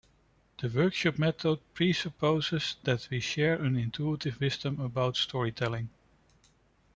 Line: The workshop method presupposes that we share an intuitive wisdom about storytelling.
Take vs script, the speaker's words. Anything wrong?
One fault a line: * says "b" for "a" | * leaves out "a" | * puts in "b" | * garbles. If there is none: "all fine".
all fine